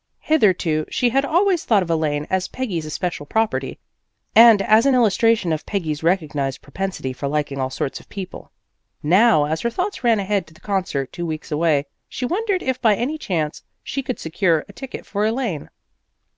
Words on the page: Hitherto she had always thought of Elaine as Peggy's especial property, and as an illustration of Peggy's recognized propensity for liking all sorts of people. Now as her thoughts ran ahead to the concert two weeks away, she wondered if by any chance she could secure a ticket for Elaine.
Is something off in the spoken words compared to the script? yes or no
no